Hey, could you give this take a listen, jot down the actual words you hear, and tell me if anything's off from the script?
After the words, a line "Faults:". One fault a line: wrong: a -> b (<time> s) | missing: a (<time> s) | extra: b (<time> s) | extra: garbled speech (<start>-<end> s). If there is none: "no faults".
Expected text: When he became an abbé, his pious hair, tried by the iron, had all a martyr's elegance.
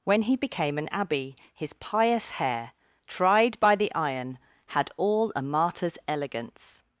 When he became an abbé, his pious hair, tried by the iron, had all a martyr's elegance.
Faults:
no faults